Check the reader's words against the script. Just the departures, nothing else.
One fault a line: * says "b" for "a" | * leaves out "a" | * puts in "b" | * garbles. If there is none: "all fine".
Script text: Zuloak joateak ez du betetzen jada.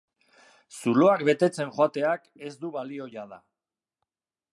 * puts in "betetzen"
* says "balio" for "betetzen"